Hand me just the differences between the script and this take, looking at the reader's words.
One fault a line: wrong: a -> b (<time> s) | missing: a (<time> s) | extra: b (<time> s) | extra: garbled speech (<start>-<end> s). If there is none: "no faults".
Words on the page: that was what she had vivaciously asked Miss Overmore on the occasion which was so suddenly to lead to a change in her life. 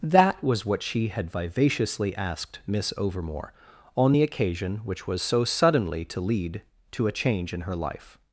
no faults